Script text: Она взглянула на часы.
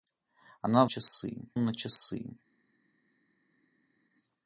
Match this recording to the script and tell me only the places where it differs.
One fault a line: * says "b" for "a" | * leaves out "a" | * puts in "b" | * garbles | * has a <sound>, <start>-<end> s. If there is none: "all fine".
* says "часы" for "взглянула"